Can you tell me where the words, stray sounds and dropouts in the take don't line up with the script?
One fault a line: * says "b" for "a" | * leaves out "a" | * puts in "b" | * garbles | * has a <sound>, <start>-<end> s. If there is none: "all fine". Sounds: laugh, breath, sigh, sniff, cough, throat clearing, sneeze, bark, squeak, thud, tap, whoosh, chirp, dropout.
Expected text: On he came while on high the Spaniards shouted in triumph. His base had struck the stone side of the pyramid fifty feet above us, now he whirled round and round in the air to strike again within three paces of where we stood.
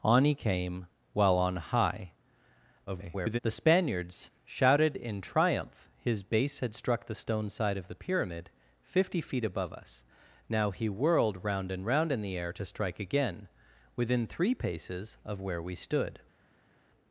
* garbles